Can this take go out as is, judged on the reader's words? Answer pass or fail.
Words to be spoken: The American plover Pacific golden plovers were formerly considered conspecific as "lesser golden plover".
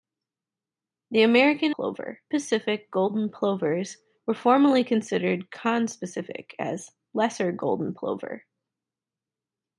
pass